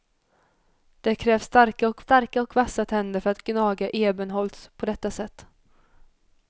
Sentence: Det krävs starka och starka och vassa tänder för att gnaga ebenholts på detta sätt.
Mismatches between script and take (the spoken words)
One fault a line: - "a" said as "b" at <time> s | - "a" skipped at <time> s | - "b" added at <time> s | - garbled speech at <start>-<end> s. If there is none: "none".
none